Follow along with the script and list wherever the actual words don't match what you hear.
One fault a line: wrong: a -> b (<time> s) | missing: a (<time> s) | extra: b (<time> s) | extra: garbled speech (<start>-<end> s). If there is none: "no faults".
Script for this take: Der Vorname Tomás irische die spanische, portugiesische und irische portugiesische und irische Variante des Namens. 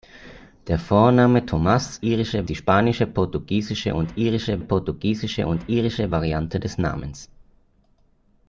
no faults